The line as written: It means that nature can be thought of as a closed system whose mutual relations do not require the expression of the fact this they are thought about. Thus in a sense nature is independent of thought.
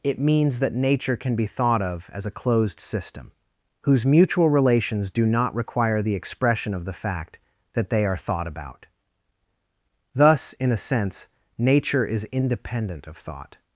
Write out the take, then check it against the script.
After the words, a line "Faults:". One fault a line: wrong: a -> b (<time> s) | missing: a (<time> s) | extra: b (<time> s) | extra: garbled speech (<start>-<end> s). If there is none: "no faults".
It means that nature can be thought of as a closed system whose mutual relations do not require the expression of the fact that they are thought about. Thus in a sense nature is independent of thought.
Faults:
wrong: this -> that (7.7 s)